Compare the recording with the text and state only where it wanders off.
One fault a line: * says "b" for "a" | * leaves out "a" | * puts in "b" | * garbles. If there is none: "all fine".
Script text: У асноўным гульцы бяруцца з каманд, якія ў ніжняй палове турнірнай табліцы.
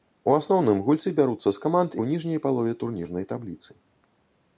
* leaves out "якія"